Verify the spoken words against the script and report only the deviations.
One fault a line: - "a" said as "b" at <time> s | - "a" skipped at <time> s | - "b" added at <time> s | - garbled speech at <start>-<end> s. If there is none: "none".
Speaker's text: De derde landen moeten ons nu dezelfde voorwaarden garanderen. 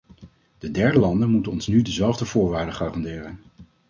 none